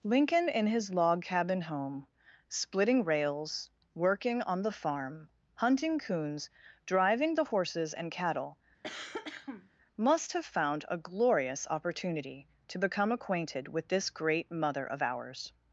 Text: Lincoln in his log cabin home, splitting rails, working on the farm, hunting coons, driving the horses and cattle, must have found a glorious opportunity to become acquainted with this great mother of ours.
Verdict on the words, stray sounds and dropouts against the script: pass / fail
fail